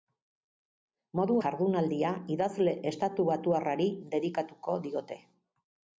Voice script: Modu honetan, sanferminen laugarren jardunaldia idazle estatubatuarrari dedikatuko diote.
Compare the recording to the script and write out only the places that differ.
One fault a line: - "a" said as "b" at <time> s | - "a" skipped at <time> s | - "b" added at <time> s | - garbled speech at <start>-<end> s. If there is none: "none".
- "honetan sanferminen laugarren" skipped at 1.4 s